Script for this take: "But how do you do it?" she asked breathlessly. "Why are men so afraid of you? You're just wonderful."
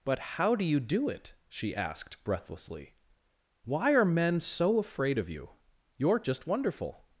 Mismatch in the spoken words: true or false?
false